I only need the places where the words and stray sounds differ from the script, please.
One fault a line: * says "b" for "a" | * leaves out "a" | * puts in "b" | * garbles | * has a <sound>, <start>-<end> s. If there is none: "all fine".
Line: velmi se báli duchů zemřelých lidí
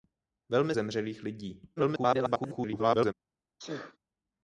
* leaves out "se báli duchů"
* garbles
* has a sneeze, 3.6-4.0 s